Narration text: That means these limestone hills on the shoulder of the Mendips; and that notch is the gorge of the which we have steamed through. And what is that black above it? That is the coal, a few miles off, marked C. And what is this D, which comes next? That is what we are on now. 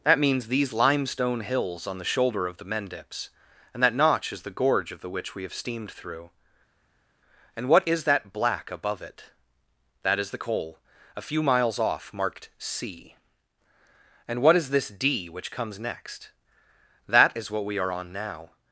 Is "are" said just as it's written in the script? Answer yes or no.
yes